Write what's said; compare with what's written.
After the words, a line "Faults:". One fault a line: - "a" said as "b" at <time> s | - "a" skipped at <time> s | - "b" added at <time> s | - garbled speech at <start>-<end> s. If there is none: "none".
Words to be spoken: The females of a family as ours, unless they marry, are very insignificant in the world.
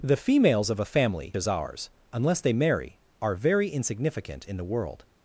The females of a family as ours, unless they marry, are very insignificant in the world.
Faults:
none